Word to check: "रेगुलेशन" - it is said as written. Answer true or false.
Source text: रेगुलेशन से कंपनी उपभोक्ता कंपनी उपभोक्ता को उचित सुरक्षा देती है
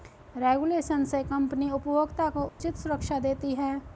true